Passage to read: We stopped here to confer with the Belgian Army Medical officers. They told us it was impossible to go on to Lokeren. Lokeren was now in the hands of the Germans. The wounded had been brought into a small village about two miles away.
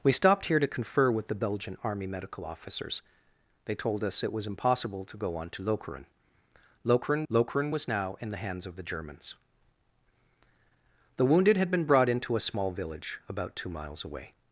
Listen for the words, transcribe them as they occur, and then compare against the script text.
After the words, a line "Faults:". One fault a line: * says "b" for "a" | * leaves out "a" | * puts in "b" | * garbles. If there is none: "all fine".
We stopped here to confer with the Belgian Army Medical officers. They told us it was impossible to go on to Lokeren. Lokeren lokeren was now in the hands of the Germans. The wounded had been brought into a small village about two miles away.
Faults:
* puts in "lokeren"